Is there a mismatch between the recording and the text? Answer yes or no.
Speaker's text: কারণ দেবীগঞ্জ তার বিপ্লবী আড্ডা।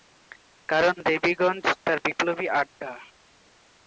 no